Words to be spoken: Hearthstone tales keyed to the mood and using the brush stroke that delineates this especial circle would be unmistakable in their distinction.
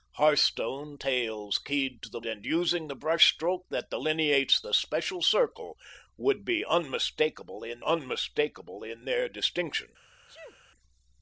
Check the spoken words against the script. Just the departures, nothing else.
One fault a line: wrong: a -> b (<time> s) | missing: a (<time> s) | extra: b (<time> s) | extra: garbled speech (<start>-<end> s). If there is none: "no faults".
missing: mood (2.2 s)
missing: this (4.6 s)
extra: unmistakable in (7.8 s)